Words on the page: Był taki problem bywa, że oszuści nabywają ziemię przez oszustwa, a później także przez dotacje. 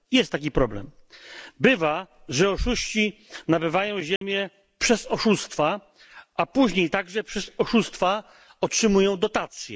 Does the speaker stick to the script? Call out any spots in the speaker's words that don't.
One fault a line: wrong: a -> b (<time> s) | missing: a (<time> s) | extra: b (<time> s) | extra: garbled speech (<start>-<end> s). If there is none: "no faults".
wrong: Był -> Jest (0.1 s)
extra: oszustwa otrzymują (7.6 s)